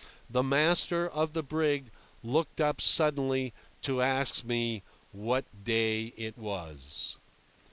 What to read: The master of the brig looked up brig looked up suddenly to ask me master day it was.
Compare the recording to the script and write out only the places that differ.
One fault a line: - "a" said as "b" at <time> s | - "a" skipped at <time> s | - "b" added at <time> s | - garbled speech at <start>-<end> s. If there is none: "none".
- "brig looked up" skipped at 2.8 s
- "master" said as "what" at 5.1 s